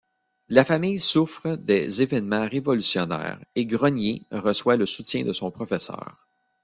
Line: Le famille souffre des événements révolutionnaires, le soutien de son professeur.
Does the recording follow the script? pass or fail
fail